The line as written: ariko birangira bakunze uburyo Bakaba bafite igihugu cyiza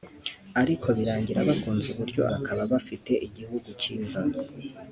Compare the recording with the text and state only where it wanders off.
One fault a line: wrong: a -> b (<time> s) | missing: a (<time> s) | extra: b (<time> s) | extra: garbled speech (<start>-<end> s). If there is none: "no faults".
no faults